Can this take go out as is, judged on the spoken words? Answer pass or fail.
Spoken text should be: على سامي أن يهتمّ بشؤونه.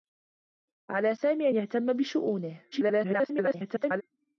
fail